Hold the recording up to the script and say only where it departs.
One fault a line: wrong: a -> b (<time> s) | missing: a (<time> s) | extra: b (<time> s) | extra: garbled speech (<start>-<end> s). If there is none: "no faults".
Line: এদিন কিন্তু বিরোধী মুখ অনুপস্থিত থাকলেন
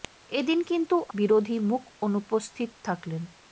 no faults